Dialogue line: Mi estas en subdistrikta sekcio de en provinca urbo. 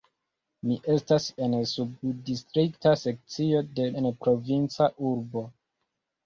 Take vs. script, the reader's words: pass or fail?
pass